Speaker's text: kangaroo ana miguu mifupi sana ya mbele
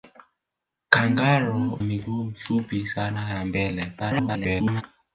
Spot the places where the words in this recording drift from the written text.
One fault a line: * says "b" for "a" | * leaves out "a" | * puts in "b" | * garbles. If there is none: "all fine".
* leaves out "ana"
* garbles